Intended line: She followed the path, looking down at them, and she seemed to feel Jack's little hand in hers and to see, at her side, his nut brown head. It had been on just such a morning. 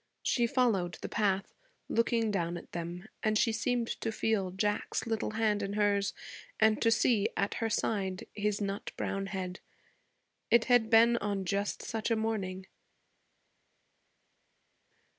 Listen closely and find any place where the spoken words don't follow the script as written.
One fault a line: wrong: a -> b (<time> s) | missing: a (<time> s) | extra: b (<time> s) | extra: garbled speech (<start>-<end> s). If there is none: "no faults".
no faults